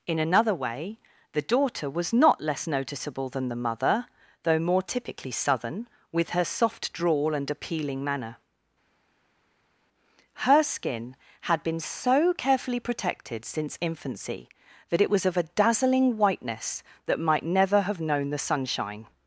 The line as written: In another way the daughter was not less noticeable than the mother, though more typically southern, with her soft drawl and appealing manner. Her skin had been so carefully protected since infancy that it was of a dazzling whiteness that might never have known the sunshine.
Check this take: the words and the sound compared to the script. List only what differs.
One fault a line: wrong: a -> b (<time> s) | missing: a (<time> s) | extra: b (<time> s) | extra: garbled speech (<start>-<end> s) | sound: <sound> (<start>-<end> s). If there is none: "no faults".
no faults